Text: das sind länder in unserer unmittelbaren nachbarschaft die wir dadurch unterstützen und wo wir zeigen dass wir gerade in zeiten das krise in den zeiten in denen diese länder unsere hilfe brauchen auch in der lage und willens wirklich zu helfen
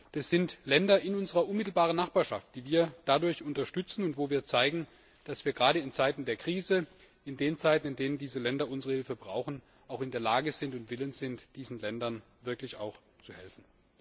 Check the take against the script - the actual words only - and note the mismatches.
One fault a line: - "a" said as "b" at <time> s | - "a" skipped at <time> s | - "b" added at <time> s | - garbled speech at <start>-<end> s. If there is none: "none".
- "das" said as "der" at 6.2 s
- "sind diesen ländern" added at 11.2 s